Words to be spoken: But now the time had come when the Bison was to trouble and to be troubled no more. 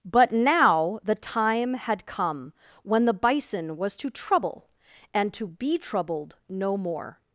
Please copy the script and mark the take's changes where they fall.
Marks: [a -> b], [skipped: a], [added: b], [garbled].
But now the time had come when the Bison was to trouble and to be troubled no more.